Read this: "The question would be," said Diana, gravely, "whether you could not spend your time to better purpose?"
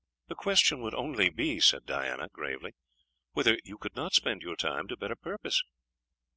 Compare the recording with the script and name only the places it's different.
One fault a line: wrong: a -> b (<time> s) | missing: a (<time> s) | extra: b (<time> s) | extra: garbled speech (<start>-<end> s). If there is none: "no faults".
extra: only (0.9 s)